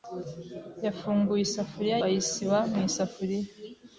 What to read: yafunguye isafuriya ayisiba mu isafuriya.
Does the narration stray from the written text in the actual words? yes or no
no